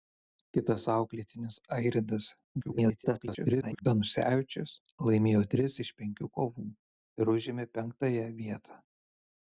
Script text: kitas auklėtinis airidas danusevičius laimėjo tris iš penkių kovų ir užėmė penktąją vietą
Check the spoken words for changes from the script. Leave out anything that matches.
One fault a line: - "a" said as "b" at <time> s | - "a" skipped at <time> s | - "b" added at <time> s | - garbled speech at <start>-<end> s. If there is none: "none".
- garbled speech at 2.6-3.9 s